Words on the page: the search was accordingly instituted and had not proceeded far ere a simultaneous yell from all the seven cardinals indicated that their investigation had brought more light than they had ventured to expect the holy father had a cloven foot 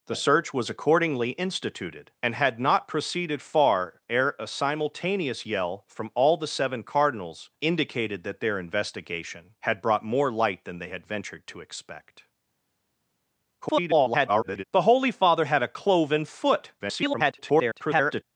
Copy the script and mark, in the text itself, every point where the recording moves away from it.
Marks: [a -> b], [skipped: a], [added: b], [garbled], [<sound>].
the search was accordingly instituted and had not proceeded far ere a simultaneous yell from all the seven cardinals indicated that their investigation had brought more light than they had ventured to expect [garbled] the holy father had a cloven foot [garbled]